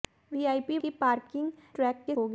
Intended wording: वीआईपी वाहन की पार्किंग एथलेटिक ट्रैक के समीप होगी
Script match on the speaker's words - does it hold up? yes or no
no